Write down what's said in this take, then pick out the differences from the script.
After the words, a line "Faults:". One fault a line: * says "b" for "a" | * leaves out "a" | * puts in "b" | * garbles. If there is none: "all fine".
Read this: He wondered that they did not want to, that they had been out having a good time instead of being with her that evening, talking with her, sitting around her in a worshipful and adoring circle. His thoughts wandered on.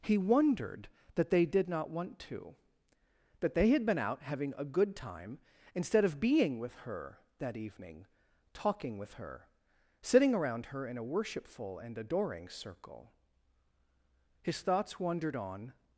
He wondered that they did not want to, that they had been out having a good time instead of being with her that evening, talking with her, sitting around her in a worshipful and adoring circle. His thoughts wandered on.
Faults:
all fine